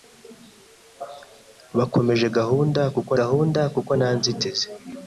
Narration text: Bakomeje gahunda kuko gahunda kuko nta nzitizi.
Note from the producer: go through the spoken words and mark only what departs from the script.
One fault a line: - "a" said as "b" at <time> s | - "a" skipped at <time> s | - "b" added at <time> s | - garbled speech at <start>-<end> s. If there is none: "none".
none